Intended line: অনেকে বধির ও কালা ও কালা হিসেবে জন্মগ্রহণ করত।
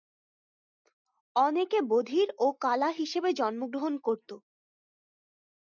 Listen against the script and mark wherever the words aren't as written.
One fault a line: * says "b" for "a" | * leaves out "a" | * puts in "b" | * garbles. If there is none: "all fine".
* leaves out "ও কালা"